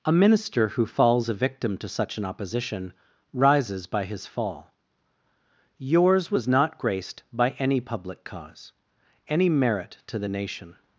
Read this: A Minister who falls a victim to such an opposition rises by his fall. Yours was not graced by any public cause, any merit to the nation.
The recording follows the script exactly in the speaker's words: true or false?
true